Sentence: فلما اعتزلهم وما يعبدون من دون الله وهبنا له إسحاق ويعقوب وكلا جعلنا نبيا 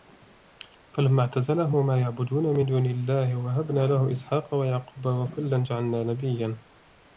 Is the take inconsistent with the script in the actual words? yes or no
no